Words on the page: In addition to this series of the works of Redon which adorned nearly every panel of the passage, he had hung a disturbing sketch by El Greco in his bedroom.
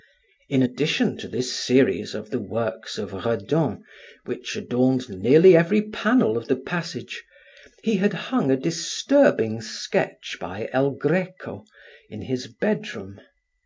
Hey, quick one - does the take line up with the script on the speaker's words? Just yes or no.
yes